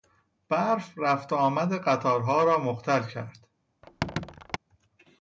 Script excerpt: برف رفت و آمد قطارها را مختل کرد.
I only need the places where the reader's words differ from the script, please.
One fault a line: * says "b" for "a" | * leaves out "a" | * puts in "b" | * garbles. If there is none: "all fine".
all fine